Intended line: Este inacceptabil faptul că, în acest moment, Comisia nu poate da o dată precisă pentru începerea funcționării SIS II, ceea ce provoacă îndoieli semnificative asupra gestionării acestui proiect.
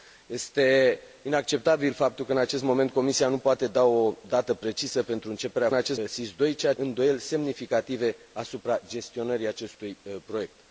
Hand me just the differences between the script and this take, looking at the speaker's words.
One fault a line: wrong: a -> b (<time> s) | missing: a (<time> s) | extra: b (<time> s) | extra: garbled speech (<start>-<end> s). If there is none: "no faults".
wrong: funcționării -> acest (5.7 s)
missing: ce provoacă (6.7 s)